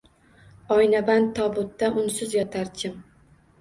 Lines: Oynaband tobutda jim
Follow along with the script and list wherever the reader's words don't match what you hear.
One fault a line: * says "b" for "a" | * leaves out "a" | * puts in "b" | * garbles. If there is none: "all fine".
* puts in "unsiz yotar"